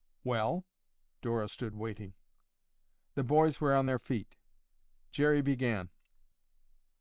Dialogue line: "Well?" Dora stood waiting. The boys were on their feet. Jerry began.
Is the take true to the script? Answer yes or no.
yes